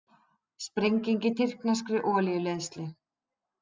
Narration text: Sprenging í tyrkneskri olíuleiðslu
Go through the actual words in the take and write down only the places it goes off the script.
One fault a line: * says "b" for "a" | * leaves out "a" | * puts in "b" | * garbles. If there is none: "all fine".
all fine